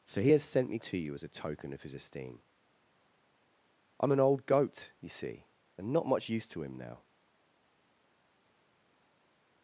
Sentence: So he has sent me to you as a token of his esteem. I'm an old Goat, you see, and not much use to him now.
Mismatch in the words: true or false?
false